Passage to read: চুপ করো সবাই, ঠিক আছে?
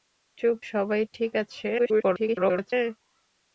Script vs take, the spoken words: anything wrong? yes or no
yes